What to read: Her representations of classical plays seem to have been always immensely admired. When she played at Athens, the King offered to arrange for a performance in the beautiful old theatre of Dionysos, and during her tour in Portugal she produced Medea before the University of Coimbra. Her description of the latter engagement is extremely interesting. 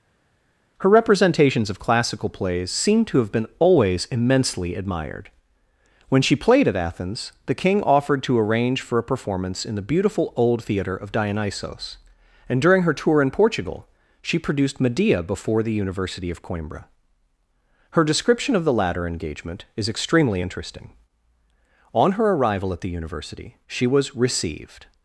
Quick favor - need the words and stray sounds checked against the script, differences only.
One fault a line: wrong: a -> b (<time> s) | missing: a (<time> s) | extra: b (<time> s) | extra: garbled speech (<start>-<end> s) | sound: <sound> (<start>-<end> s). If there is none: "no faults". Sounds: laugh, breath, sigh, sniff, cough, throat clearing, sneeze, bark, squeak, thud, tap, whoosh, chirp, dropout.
extra: On her arrival at the University she was received (21.9 s)